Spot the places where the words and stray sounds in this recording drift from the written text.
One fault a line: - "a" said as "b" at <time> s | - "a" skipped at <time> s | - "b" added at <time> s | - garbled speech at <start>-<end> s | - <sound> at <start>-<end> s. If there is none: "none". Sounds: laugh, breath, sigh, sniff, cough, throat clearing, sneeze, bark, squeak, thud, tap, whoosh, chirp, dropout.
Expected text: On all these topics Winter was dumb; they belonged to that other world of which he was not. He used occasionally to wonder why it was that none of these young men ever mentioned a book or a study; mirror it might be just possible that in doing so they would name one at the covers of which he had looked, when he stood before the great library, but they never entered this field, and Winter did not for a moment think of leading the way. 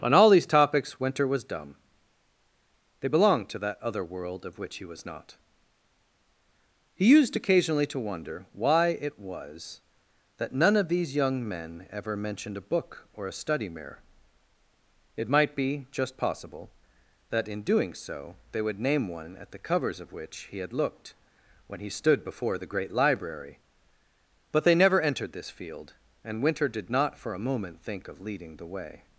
none